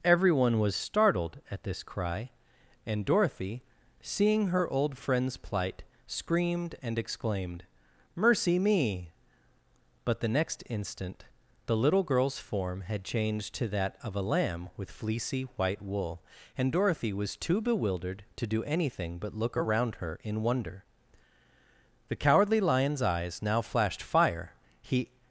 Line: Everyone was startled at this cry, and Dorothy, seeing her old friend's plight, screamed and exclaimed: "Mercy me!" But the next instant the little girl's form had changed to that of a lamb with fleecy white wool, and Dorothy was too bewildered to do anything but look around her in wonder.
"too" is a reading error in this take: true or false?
false